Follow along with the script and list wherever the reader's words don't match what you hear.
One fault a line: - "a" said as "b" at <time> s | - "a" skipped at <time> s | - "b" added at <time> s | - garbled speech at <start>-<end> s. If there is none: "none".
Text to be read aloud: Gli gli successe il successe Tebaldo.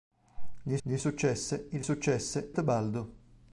none